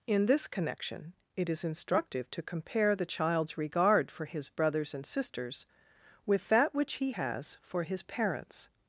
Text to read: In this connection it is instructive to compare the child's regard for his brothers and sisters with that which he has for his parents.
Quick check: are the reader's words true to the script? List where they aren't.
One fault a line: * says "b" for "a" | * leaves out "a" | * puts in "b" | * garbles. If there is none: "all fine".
all fine